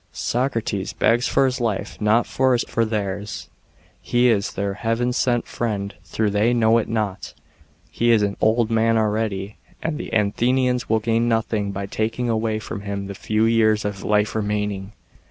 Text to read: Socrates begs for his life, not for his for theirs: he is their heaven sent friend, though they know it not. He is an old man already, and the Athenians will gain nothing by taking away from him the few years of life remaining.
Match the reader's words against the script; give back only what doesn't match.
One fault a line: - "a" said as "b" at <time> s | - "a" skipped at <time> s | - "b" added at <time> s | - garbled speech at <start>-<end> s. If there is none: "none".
none